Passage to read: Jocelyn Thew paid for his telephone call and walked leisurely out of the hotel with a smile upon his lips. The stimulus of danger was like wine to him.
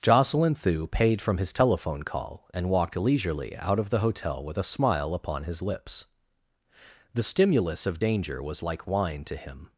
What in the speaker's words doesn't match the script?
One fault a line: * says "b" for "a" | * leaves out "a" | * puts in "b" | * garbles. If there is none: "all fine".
* says "from" for "for"